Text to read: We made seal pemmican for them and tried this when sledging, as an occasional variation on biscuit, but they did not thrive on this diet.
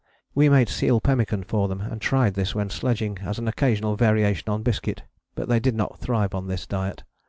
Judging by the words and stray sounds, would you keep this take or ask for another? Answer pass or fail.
pass